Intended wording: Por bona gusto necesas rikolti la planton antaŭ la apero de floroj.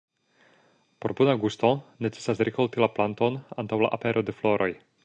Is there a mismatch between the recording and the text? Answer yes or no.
no